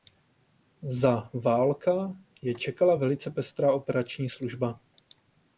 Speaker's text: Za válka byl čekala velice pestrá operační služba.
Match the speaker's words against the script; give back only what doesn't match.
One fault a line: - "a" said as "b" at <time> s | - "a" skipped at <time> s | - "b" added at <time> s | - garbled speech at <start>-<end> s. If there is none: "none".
- "byl" said as "je" at 2.4 s